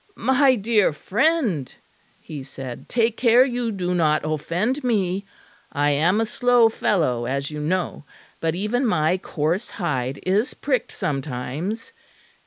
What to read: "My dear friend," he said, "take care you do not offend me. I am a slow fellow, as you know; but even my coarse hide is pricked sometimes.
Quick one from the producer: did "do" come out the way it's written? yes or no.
yes